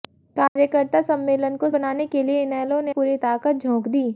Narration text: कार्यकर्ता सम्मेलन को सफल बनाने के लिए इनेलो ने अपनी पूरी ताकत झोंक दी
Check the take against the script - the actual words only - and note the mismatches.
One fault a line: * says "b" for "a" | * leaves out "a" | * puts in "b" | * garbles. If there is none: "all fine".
* leaves out "सफल"
* leaves out "अपनी"